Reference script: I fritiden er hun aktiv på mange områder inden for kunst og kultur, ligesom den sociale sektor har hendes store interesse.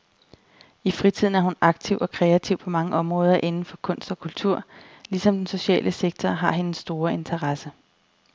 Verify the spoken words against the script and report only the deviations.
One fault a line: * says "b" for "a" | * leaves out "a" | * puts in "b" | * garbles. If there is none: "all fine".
* puts in "og kreativ"